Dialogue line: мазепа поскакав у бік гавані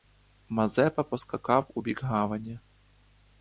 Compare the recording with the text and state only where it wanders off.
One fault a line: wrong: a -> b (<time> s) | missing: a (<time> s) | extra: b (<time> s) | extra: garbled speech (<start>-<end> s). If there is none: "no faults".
no faults